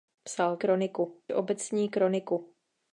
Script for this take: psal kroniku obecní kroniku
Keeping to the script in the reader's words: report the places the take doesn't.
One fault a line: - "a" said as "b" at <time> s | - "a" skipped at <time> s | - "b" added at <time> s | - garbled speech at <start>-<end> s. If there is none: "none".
none